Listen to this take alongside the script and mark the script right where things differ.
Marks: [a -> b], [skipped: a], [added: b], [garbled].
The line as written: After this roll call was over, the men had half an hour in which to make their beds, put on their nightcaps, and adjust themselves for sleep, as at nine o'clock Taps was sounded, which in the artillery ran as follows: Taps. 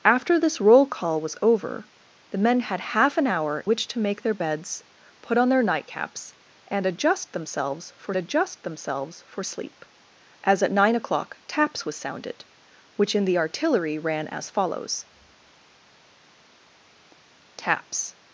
After this roll call was over, the men had half an hour [skipped: in] which to make their beds, put on their nightcaps, and adjust themselves for [added: adjust themselves for] sleep, as at nine o'clock Taps was sounded, which in the artillery ran as follows: Taps.